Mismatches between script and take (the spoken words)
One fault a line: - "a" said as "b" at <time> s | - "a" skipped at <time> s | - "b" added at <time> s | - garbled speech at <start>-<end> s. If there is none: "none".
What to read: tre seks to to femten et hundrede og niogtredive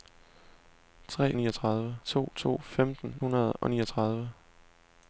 - "seks" said as "niogtredive" at 1.4 s
- "et" skipped at 3.2 s